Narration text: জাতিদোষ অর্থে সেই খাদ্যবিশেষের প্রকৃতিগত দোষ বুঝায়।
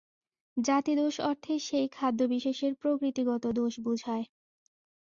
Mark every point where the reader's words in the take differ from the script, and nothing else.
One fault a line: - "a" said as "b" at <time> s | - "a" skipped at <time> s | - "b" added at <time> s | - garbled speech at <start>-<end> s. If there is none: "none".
none